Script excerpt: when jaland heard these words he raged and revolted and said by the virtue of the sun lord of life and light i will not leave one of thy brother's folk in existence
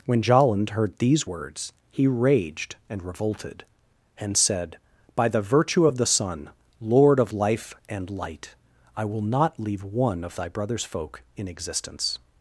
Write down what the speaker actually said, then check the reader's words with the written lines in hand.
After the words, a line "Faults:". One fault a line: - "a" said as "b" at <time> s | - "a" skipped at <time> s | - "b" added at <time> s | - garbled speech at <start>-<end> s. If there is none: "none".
when jaland heard these words he raged and revolted and said by the virtue of the sun lord of life and light i will not leave one of thy brother's folk in existence
Faults:
none